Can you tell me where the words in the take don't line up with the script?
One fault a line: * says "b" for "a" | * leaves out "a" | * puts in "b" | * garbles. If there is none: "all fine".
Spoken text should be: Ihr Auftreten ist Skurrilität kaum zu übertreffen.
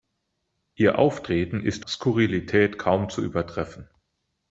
all fine